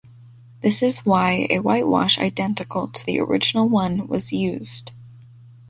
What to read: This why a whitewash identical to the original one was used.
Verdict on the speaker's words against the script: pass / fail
fail